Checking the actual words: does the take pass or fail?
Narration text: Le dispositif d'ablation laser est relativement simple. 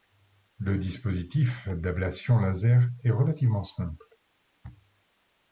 pass